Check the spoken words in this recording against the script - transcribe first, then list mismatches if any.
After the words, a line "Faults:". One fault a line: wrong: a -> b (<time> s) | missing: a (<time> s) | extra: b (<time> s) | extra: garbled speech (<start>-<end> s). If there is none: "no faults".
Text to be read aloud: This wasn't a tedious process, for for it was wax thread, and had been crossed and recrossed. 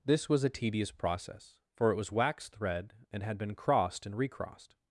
This was a tedious process, for it was wax thread, and had been crossed and recrossed.
Faults:
wrong: wasn't -> was (0.3 s)
missing: for (1.9 s)